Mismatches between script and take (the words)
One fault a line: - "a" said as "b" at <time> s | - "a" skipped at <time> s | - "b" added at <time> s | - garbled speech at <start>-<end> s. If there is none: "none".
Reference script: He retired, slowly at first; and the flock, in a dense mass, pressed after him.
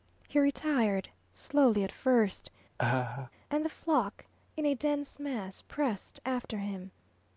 none